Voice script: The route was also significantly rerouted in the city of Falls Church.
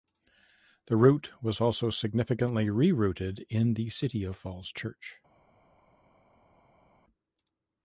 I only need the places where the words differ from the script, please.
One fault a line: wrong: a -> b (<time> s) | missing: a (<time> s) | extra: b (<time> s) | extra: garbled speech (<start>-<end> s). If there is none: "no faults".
no faults